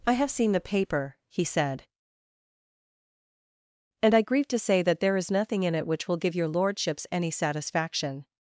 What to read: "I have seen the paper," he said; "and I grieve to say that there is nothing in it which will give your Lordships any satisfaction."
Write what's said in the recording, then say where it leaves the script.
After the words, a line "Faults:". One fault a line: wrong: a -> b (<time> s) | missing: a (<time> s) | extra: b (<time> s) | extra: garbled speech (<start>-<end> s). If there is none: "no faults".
"I have seen the paper," he said; "and I grieve to say that there is nothing in it which will give your Lordships any satisfaction."
Faults:
no faults